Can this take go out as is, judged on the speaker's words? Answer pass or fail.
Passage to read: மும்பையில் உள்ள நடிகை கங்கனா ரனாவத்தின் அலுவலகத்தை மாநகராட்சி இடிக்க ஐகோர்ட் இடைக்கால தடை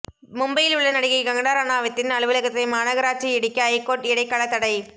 pass